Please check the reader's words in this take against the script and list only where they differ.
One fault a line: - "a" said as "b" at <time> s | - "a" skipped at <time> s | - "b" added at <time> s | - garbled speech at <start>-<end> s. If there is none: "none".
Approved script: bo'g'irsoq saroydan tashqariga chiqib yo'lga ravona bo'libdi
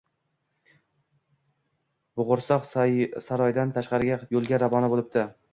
- "chiqib" skipped at 4.2 s